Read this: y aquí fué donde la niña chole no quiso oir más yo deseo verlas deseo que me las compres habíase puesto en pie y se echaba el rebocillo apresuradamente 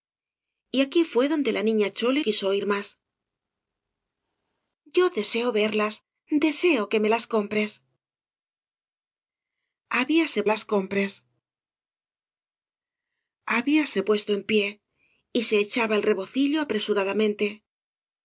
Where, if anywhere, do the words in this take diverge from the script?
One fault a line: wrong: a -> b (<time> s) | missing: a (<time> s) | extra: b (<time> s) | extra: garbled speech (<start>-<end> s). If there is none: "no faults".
missing: no (2.2 s)
extra: las compres habíase (10.5 s)